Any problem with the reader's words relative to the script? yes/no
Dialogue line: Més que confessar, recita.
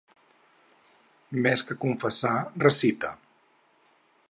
no